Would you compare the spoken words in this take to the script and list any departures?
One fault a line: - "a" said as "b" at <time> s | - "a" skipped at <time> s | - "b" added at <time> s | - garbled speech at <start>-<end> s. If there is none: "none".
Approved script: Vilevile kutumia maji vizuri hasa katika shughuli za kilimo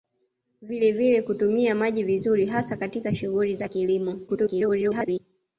- garbled speech at 4.3-5.2 s